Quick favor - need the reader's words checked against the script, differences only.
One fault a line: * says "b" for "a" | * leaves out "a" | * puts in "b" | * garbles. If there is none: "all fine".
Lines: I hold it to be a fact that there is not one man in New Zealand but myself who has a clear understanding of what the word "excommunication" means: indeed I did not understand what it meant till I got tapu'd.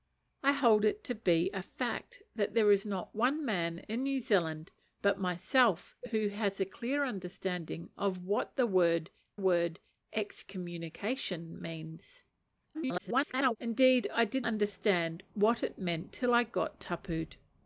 * puts in "word"
* garbles
* leaves out "not"